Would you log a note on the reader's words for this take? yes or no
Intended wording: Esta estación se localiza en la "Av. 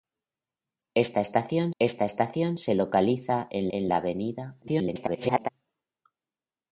yes